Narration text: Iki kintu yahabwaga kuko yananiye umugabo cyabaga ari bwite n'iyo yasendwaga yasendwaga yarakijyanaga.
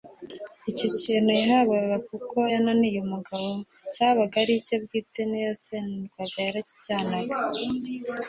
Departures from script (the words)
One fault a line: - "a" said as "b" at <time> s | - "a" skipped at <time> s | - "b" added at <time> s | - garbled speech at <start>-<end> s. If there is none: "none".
- "Iki" said as "Icyo" at 0.7 s
- "icye" added at 4.6 s
- "yasendwaga" skipped at 6.4 s